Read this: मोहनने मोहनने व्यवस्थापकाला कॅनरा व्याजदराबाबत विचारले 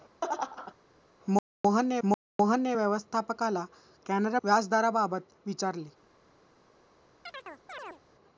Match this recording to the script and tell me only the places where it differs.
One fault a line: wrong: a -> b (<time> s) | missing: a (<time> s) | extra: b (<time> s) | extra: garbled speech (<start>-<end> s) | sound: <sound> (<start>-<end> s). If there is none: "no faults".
sound: laugh (0.2-0.7 s)
sound: chirp (7.3-8.0 s)